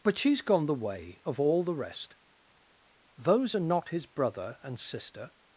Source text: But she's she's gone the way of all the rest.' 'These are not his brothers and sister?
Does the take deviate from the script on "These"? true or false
true